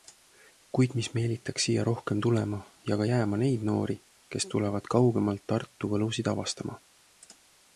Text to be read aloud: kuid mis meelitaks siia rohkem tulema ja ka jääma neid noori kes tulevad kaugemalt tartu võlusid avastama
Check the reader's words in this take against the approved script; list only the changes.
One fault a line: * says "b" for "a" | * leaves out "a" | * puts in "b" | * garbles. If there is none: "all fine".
all fine